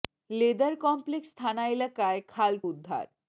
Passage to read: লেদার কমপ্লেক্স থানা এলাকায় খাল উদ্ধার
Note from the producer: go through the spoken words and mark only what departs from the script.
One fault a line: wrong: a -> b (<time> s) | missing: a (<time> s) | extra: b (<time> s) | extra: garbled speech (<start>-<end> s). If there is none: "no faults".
no faults